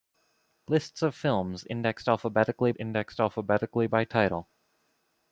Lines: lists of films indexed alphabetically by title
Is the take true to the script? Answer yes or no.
no